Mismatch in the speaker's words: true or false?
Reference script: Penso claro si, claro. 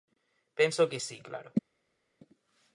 true